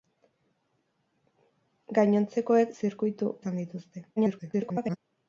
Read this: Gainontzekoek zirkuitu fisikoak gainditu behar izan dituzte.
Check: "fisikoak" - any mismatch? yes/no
yes